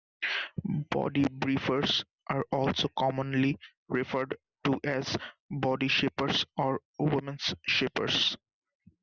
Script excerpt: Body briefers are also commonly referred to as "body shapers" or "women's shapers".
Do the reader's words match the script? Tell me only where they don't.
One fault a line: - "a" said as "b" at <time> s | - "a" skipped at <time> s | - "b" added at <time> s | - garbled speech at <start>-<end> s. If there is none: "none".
none